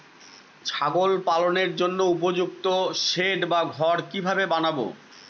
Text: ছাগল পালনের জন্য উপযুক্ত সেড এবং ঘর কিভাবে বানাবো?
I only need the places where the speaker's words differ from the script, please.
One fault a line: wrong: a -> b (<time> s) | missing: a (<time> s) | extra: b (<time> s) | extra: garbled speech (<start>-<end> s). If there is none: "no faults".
wrong: এবং -> বা (3.5 s)